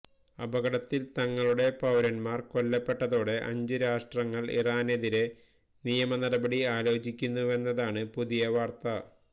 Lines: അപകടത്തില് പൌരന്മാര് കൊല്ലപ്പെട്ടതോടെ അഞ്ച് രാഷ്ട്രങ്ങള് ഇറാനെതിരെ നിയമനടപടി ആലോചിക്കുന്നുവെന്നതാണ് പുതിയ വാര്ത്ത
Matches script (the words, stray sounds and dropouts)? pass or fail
fail